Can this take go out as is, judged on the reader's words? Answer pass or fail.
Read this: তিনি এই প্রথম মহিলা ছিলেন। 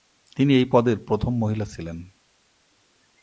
fail